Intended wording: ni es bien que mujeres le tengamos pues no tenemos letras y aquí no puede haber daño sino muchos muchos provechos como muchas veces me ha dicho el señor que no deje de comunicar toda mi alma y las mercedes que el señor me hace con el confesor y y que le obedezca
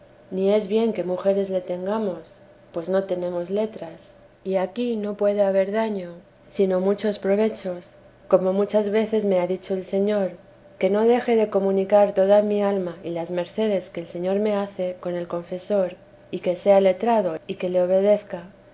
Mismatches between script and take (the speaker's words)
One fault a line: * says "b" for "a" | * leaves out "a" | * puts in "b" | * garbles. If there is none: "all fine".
* leaves out "muchos"
* puts in "que sea letrado"